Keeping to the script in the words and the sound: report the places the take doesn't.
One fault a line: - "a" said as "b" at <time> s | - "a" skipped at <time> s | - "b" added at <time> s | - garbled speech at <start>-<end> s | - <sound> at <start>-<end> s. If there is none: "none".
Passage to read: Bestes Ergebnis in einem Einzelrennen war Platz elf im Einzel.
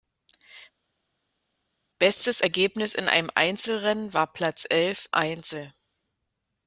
- "im" skipped at 5.1 s